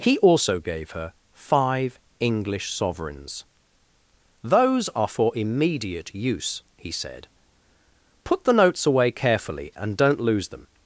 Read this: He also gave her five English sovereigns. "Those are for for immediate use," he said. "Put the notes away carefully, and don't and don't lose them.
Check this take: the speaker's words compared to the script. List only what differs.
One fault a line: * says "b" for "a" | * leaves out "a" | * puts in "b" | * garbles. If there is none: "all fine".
* leaves out "for"
* leaves out "and don't"